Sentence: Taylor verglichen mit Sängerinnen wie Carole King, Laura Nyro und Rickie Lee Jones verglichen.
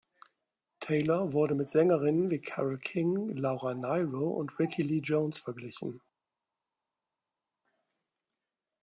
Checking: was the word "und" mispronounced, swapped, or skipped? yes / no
no